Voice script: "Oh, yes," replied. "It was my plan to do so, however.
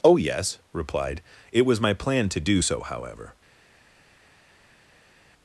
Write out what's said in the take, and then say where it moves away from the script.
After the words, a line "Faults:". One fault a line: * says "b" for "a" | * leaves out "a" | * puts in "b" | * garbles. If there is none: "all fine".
"Oh, yes," replied. "It was my plan to do so, however.
Faults:
all fine